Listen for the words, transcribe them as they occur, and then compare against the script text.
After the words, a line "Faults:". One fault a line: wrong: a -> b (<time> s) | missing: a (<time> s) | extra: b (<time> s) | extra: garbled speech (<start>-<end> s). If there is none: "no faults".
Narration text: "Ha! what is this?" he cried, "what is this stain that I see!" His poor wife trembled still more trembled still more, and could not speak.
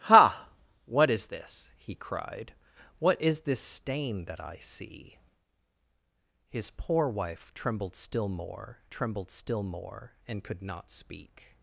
"Ha! what is this?" he cried, "what is this stain that I see!" His poor wife trembled still more trembled still more, and could not speak.
Faults:
no faults